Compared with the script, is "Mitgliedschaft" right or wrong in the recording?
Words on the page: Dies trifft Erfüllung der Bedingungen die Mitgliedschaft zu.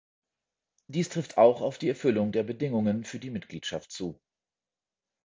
right